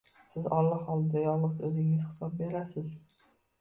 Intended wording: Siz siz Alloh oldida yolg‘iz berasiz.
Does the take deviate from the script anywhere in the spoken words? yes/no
yes